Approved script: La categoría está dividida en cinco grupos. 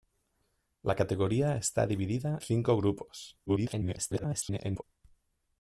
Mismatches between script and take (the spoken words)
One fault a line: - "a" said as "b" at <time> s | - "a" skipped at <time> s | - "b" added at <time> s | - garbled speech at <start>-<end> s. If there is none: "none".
- "en" skipped at 2.4 s
- garbled speech at 3.5-4.8 s